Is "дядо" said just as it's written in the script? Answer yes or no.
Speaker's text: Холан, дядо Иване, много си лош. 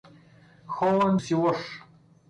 no